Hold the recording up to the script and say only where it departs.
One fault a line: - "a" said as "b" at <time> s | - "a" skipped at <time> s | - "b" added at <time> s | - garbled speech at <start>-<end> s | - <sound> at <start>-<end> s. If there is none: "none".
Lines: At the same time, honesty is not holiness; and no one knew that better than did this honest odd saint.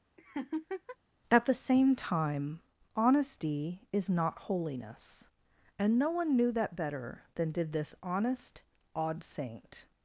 - laugh at 0.2-1.0 s